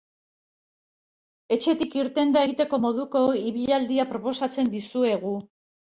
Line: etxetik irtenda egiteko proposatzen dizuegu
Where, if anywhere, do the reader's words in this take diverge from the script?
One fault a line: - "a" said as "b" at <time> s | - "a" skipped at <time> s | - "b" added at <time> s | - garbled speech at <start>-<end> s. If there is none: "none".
- "moduko ibilaldia" added at 2.8 s